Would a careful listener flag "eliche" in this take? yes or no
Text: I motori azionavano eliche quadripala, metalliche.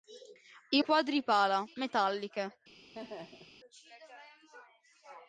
yes